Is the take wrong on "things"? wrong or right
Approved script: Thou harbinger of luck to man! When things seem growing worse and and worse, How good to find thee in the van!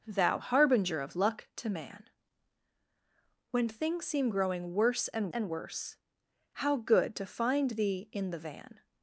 right